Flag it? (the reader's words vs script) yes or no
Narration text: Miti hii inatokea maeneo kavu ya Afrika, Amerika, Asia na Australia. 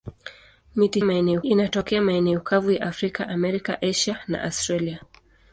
yes